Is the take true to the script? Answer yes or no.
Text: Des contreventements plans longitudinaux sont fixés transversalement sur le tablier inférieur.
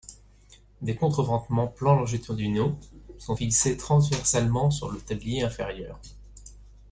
yes